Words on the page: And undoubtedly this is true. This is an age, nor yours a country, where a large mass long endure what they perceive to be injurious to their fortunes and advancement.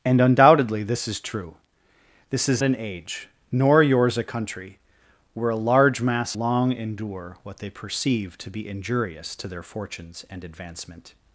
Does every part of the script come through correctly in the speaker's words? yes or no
yes